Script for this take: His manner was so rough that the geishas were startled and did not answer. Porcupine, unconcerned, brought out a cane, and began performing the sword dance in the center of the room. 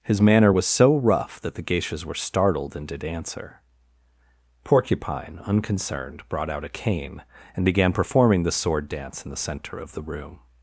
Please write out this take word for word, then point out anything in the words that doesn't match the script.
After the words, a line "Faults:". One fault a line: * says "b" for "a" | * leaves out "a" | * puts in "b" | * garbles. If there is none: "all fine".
His manner was so rough that the geishas were startled and did answer. Porcupine, unconcerned, brought out a cane, and began performing the sword dance in the center of the room.
Faults:
* leaves out "not"